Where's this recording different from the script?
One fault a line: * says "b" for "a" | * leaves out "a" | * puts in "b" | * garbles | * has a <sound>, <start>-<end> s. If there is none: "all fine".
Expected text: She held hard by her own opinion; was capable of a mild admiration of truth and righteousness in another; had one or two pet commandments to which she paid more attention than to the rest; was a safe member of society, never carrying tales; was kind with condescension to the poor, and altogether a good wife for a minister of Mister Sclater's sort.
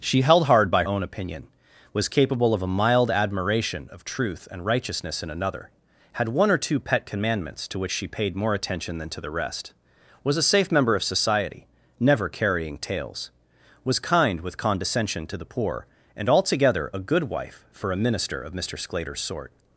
* leaves out "her"